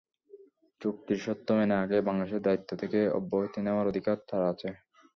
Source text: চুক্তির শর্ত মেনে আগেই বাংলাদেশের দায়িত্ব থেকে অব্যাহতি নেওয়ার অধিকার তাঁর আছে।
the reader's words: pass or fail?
pass